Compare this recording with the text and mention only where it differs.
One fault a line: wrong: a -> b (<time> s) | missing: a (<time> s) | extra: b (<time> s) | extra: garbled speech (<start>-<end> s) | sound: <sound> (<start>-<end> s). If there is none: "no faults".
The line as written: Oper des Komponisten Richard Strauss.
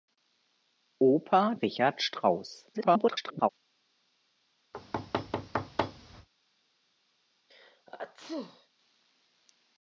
missing: des Komponisten (1.5 s)
extra: garbled speech (2.7-3.5 s)
sound: thud (4.7-6.3 s)
sound: sneeze (7.5-8.7 s)